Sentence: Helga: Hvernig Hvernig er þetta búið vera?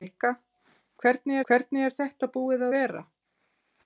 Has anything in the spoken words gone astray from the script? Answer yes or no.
no